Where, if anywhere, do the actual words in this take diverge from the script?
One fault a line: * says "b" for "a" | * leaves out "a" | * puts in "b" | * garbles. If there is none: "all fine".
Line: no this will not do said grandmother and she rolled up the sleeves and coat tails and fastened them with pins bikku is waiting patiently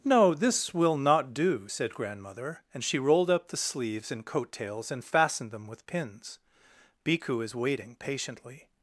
all fine